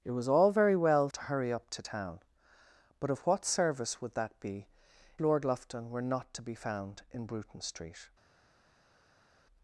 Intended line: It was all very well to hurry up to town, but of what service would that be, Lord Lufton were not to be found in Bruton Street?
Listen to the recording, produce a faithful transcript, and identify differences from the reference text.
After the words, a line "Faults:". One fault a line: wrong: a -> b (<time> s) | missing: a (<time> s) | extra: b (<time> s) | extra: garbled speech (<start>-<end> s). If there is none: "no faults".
It was all very well to hurry up to town, but of what service would that be, Lord Lufton were not to be found in Bruton Street?
Faults:
no faults